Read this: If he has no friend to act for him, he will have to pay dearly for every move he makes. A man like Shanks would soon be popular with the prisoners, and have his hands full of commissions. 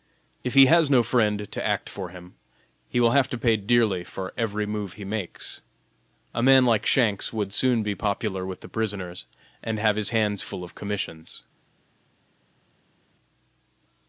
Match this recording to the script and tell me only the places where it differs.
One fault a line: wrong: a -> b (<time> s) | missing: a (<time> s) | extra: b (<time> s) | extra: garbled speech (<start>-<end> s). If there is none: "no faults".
no faults